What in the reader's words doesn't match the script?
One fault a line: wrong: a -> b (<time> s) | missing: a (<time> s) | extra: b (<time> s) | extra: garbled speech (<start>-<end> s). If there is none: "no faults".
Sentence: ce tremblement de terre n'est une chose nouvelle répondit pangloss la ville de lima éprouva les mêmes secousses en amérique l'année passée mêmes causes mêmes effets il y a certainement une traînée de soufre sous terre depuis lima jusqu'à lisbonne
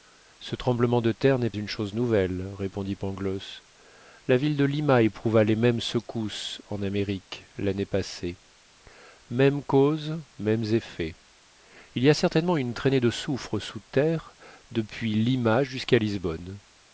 no faults